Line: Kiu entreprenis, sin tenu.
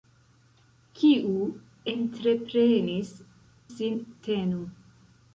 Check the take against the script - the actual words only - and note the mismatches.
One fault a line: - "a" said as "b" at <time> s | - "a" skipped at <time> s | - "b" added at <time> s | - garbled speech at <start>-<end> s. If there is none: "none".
none